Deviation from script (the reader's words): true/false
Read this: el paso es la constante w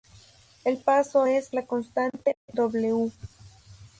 false